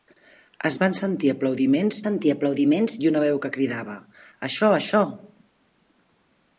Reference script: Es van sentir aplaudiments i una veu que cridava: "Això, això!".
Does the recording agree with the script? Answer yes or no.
no